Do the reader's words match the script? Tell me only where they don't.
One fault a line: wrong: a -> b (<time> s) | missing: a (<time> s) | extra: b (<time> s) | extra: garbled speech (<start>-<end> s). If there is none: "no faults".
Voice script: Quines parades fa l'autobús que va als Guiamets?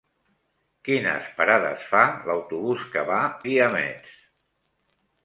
missing: als (3.2 s)